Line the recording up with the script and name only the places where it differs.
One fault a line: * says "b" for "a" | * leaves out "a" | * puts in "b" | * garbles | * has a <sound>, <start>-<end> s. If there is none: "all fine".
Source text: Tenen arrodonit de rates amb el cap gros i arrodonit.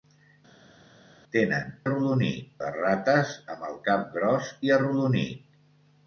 all fine